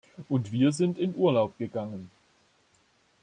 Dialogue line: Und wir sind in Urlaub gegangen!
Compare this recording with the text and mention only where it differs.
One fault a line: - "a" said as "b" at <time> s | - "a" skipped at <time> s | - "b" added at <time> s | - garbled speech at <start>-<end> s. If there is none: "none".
none